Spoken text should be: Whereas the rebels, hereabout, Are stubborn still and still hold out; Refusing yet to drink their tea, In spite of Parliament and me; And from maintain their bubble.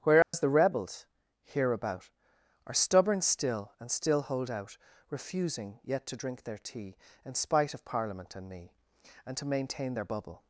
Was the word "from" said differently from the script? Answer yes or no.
yes